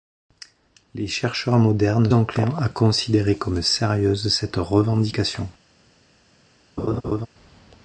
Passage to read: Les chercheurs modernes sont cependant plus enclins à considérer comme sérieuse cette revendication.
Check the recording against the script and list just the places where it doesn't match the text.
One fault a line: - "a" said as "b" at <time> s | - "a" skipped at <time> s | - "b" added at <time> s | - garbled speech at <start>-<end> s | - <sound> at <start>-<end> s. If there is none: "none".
- "sont cependant plus" skipped at 2.1 s
- laugh at 6.8-7.3 s